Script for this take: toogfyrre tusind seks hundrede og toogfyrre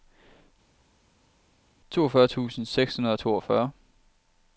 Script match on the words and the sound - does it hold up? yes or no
yes